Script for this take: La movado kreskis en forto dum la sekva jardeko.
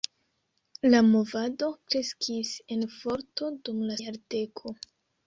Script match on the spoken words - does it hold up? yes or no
no